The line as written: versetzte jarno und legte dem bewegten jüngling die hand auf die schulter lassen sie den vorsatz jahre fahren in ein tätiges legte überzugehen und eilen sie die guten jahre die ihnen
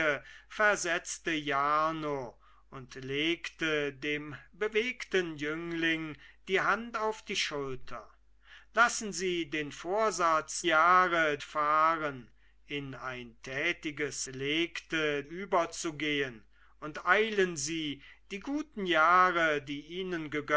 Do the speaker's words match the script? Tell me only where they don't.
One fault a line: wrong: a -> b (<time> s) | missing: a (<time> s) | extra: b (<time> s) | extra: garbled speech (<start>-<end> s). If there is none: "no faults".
no faults